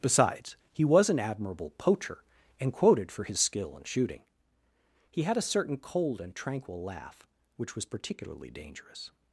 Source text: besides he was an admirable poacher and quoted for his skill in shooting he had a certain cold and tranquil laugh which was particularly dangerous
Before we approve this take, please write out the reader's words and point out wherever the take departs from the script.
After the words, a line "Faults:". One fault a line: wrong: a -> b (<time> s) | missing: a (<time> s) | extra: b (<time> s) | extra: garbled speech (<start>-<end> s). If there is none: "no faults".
besides he was an admirable poacher and quoted for his skill in shooting he had a certain cold and tranquil laugh which was particularly dangerous
Faults:
no faults